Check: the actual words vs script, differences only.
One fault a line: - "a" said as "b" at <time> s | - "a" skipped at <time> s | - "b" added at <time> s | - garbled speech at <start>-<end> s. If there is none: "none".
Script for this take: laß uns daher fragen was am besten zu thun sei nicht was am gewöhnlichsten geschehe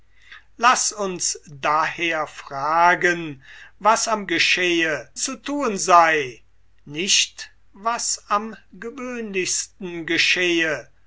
- "besten" said as "geschehe" at 4.3 s